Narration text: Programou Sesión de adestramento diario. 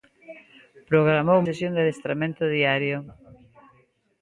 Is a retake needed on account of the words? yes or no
no